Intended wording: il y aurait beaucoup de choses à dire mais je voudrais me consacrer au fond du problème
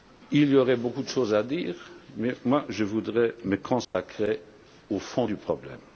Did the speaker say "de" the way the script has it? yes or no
yes